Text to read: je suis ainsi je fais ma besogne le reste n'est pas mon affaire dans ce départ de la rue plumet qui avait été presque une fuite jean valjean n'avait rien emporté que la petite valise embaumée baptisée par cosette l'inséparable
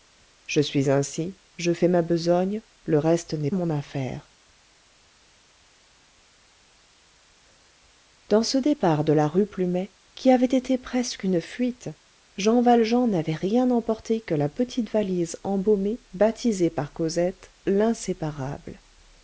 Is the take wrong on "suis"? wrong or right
right